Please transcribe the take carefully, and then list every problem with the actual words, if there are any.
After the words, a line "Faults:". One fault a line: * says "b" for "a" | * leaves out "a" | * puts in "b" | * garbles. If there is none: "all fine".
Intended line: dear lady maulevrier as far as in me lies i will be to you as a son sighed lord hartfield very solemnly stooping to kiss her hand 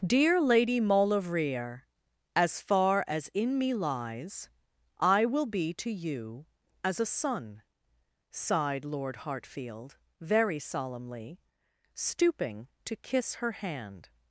dear lady maulevrier as far as in me lies i will be to you as a son sighed lord hartfield very solemnly stooping to kiss her hand
Faults:
all fine